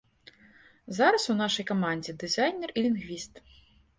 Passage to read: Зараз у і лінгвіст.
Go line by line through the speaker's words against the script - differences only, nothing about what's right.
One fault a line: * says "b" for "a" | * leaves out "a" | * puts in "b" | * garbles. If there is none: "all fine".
* puts in "нашай камандзе дызайнер"